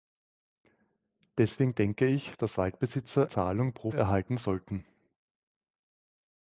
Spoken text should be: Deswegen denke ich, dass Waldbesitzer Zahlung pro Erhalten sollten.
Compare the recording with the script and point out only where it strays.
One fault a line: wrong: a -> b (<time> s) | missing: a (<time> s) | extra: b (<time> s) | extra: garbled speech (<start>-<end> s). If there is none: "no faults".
no faults